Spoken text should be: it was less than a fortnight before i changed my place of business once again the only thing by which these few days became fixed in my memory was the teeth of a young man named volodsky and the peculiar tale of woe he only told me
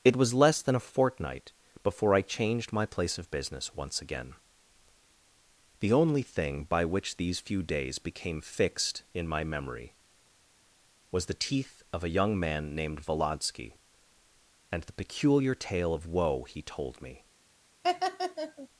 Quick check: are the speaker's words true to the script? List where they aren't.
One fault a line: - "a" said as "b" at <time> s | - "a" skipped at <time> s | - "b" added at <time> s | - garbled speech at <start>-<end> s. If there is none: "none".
- "only" skipped at 16.6 s